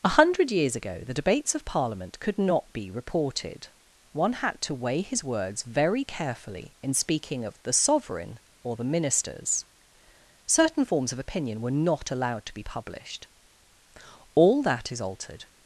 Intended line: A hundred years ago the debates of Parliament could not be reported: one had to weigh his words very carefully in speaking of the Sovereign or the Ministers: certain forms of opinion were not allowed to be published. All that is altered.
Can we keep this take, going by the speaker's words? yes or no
yes